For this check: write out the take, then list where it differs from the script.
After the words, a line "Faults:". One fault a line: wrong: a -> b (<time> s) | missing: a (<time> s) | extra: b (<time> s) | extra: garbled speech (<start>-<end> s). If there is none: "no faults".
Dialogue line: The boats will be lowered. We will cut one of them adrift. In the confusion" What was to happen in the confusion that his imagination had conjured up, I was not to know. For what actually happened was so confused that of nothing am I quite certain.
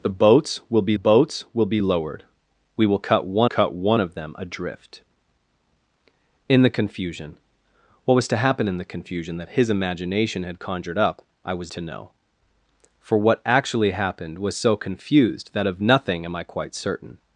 The boats will be boats will be lowered. We will cut one cut one of them adrift. In the confusion" What was to happen in the confusion that his imagination had conjured up, I was to know. For what actually happened was so confused that of nothing am I quite certain.
Faults:
extra: boats will be (0.9 s)
extra: cut one (3.4 s)
missing: not (11.7 s)